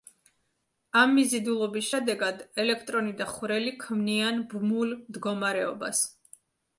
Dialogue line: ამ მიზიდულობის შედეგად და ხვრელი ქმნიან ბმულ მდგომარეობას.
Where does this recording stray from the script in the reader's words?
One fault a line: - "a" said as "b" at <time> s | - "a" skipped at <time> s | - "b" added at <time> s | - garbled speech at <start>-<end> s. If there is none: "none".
- "ელექტრონი" added at 2.6 s